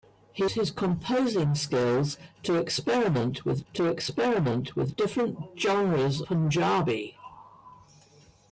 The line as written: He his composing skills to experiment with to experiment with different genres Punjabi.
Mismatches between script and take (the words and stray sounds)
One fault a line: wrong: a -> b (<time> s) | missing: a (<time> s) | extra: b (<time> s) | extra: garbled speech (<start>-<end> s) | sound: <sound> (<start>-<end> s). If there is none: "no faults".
no faults